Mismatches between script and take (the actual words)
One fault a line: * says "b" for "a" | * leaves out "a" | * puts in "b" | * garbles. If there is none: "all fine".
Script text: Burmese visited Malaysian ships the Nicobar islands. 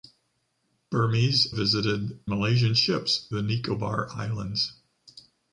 all fine